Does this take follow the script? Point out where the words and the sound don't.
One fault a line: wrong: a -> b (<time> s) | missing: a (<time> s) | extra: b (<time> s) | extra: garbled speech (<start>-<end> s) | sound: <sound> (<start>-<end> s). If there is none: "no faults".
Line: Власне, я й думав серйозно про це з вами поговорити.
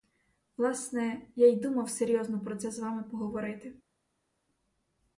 no faults